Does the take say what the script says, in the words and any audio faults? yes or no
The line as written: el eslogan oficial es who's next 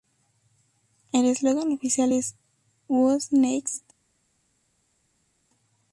yes